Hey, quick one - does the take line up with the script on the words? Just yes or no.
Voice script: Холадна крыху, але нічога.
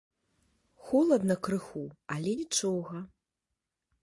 yes